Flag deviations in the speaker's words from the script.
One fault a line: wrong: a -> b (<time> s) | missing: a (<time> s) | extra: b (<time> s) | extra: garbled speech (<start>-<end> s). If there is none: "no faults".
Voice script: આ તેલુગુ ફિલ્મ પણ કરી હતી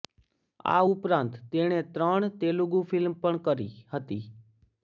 extra: ઉપરાંત તેણે ત્રણ (0.9 s)